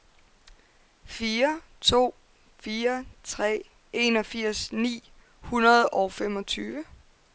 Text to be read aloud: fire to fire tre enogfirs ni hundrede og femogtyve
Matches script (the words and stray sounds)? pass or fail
pass